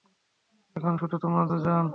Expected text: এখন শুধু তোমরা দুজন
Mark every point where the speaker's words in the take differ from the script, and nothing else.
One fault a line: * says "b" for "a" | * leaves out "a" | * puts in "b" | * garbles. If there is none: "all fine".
all fine